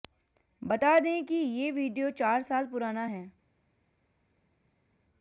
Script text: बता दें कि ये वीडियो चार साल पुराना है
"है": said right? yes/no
yes